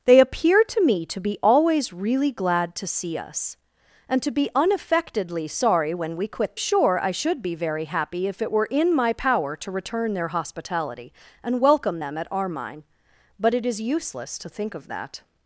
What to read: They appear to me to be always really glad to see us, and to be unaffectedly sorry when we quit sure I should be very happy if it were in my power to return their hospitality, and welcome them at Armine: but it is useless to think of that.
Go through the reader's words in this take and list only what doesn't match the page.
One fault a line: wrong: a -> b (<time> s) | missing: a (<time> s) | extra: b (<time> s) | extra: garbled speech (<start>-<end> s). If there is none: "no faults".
no faults